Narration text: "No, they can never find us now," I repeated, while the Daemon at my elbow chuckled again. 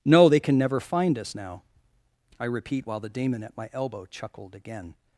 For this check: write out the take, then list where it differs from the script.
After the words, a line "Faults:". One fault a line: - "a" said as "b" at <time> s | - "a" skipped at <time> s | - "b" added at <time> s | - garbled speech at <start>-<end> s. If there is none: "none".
"No, they can never find us now," I repeat, while the Daemon at my elbow chuckled again.
Faults:
- "repeated" said as "repeat" at 2.5 s